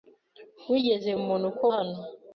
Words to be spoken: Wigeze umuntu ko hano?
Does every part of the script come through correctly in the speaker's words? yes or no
yes